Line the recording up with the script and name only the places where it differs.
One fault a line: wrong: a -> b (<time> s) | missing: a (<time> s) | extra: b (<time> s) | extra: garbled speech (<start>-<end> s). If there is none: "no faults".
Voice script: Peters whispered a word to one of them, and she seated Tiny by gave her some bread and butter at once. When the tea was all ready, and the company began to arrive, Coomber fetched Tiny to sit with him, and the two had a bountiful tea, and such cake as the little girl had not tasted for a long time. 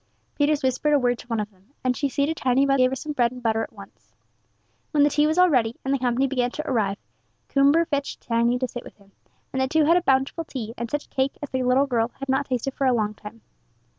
no faults